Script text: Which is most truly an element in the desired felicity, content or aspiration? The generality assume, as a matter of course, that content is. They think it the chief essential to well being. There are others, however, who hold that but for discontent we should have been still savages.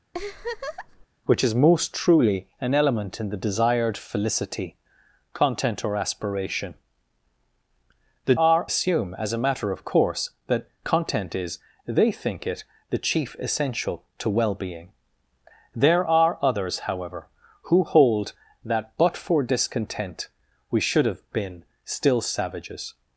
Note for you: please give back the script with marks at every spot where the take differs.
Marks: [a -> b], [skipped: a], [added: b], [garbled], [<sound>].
[laugh] Which is most truly an element in the desired felicity, content or aspiration? The [generality -> are] assume, as a matter of course, that content is. They think it the chief essential to well being. There are others, however, who hold that but for discontent we should have been still savages.